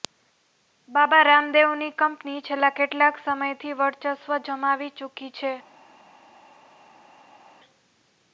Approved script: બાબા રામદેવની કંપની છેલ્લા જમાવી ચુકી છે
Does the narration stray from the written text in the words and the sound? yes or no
yes